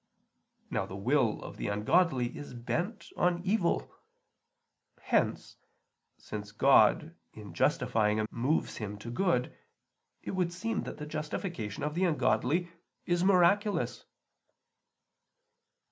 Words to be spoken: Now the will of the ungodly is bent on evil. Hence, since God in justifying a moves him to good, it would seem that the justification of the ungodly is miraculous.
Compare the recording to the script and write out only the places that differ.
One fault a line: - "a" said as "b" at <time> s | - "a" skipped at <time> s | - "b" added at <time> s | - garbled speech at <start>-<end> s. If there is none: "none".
none